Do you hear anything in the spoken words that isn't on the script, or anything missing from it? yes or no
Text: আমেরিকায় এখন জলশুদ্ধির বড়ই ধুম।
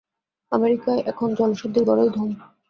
no